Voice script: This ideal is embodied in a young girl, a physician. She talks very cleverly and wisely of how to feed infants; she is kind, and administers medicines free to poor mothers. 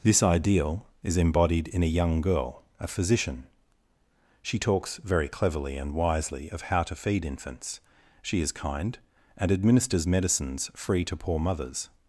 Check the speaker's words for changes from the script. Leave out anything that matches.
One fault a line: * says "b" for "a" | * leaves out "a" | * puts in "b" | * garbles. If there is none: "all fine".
all fine